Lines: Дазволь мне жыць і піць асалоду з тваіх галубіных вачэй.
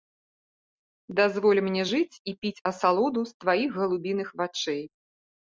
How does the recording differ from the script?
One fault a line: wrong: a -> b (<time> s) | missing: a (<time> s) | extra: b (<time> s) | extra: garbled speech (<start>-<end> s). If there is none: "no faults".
no faults